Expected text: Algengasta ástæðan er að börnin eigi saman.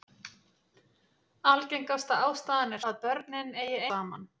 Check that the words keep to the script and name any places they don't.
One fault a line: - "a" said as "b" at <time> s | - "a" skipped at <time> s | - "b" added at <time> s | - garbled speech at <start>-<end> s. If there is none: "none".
none